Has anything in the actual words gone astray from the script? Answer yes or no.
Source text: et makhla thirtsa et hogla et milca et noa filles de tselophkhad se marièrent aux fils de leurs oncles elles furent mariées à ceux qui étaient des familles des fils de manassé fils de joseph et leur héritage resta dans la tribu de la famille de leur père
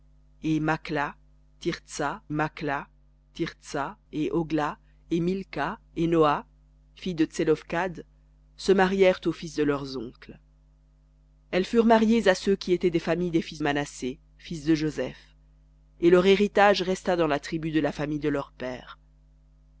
yes